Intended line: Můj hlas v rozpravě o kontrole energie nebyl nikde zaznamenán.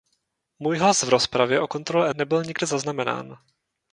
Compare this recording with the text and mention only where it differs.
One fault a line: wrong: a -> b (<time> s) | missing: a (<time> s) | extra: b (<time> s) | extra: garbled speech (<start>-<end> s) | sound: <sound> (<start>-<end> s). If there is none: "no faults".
missing: energie (2.1 s)